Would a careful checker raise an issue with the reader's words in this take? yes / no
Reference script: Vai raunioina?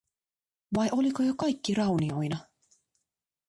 yes